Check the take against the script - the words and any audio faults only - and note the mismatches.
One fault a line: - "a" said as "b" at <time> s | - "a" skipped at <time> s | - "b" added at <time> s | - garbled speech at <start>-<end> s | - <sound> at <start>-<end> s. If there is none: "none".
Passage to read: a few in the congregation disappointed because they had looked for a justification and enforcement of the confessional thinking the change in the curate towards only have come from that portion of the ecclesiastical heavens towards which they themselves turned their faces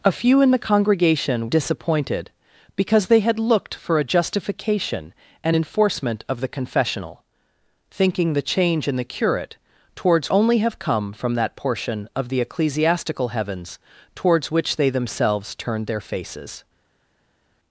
none